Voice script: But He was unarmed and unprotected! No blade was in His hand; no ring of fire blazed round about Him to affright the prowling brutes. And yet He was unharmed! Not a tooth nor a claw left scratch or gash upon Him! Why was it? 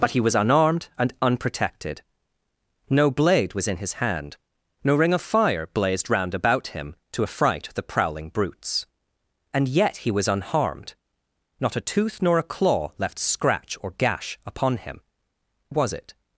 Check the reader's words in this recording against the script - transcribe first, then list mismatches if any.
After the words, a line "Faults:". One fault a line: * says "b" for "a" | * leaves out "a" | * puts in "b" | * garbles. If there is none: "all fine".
But He was unarmed and unprotected! No blade was in His hand; no ring of fire blazed round about Him to affright the prowling brutes. And yet He was unharmed! Not a tooth nor a claw left scratch or gash upon Him! Was it?
Faults:
* leaves out "Why"